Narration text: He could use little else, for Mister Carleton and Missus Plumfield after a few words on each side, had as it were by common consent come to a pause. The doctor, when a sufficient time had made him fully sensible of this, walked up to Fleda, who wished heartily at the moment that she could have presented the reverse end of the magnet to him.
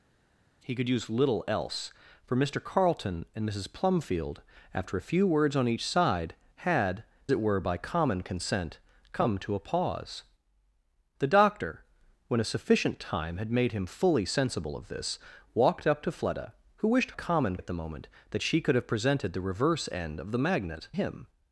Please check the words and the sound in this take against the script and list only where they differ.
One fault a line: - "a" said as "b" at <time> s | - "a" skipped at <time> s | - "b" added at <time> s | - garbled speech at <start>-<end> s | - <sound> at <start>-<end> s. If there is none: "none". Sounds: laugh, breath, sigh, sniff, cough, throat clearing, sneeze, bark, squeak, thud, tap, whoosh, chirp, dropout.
- "as" skipped at 7.0 s
- "heartily" said as "common" at 17.1 s
- "to" skipped at 20.9 s